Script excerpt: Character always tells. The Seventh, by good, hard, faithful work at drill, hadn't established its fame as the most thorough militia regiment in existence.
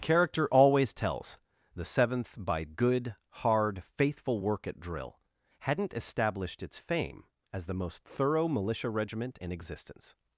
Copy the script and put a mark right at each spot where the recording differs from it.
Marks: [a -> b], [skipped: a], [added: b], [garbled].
Character always tells. The Seventh, by good, hard, faithful work at drill, hadn't established its fame as the most thorough militia regiment in existence.